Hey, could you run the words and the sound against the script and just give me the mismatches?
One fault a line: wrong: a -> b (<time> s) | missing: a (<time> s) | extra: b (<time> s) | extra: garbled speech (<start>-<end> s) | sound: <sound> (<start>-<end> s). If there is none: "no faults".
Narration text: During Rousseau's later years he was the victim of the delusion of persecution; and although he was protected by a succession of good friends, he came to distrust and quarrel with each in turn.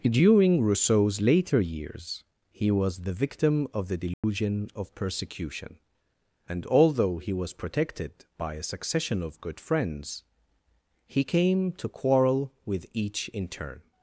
sound: dropout (4.1-4.2 s)
missing: distrust and (11.9 s)